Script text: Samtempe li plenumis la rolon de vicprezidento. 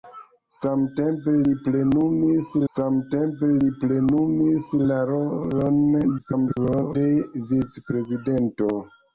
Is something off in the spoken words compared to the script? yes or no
yes